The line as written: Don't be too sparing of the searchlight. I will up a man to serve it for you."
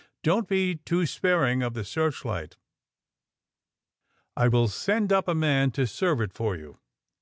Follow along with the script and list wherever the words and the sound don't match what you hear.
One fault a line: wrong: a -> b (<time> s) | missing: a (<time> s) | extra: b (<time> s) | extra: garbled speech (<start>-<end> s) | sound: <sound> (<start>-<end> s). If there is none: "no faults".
extra: send (4.7 s)